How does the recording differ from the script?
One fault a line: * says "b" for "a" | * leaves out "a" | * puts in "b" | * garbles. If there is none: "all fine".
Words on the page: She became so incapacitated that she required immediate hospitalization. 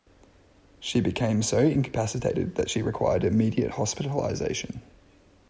all fine